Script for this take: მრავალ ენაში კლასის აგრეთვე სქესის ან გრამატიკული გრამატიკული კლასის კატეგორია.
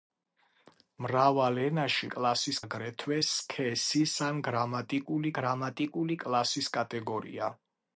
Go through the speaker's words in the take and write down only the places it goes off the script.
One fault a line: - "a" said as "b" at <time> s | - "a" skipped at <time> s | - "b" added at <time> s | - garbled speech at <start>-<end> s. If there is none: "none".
none